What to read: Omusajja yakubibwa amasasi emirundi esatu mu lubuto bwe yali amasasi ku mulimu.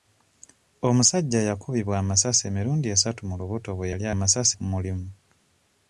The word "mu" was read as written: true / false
true